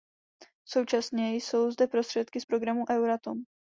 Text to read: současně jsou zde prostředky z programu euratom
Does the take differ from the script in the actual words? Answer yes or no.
no